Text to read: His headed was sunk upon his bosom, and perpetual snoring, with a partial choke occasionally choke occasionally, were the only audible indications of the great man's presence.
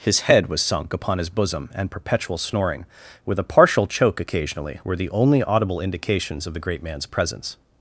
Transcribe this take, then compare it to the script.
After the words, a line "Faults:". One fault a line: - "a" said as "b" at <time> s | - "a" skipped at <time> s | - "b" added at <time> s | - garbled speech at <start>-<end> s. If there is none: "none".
His head was sunk upon his bosom, and perpetual snoring, with a partial choke occasionally, were the only audible indications of the great man's presence.
Faults:
- "headed" said as "head" at 0.2 s
- "choke occasionally" skipped at 4.8 s